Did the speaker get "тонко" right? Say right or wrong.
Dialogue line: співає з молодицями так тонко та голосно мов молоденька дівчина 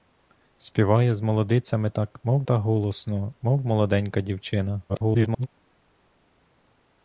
wrong